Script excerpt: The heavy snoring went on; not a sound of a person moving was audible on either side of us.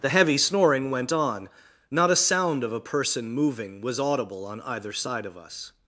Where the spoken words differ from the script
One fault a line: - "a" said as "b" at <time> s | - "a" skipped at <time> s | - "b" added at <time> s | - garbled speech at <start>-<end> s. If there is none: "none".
none